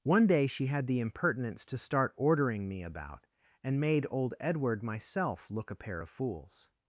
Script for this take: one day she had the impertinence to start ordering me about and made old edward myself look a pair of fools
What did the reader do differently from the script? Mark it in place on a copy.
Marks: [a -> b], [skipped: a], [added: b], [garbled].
one day she had the impertinence to start ordering me about and made old edward myself look a pair of fools